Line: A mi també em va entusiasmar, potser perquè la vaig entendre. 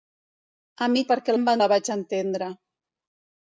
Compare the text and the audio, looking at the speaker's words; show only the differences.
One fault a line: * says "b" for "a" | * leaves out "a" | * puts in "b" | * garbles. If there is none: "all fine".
* says "perquè" for "també"
* leaves out "entusiasmar potser perquè"